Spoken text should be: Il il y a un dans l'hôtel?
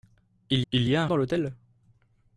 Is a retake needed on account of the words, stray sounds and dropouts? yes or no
no